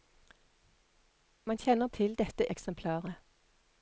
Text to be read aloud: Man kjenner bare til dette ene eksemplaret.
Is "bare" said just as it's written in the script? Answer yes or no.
no